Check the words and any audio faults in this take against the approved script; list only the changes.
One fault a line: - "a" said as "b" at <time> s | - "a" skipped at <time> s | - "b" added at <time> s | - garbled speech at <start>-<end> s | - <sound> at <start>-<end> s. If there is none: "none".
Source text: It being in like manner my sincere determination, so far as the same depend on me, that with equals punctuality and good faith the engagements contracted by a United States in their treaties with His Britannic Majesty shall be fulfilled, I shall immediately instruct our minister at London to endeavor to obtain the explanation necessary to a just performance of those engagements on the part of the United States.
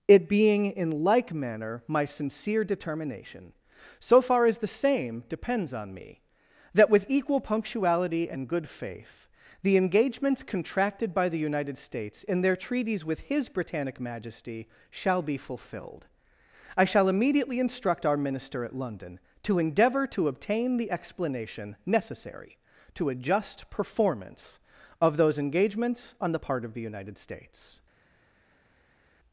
- "depend" said as "depends" at 5.3 s
- "equals" said as "equal" at 7.1 s
- "a" said as "the" at 11.3 s